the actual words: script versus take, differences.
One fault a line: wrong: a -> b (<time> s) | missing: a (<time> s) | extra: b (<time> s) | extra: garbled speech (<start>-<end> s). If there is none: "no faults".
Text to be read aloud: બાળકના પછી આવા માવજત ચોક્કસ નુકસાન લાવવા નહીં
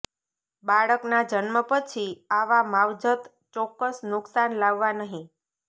extra: જન્મ (1.2 s)